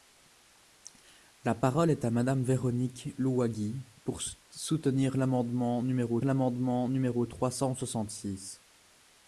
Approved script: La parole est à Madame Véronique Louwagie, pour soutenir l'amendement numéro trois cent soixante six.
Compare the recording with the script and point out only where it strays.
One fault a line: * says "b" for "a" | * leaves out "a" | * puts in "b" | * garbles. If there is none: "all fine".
* puts in "l'amendement numéro"